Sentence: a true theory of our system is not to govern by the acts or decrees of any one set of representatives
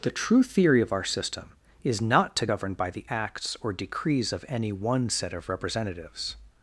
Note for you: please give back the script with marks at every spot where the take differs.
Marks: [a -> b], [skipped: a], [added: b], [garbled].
[a -> the] true theory of our system is not to govern by the acts or decrees of any one set of representatives